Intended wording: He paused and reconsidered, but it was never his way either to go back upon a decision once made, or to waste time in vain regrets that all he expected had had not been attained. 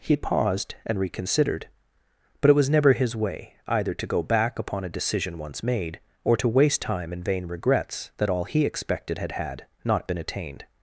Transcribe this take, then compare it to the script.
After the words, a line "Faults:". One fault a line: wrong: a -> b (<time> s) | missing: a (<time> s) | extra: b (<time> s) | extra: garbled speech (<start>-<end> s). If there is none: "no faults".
He paused and reconsidered, but it was never his way either to go back upon a decision once made, or to waste time in vain regrets that all he expected had had not been attained.
Faults:
no faults